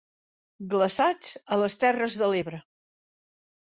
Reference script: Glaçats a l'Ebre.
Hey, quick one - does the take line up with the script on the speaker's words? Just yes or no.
no